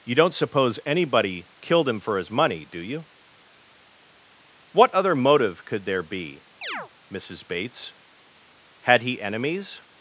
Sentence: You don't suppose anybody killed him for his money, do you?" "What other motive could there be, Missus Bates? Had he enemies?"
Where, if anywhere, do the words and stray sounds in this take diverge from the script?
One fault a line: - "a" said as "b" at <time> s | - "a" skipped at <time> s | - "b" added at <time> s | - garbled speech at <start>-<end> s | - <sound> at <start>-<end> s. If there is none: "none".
- chirp at 6.6-6.9 s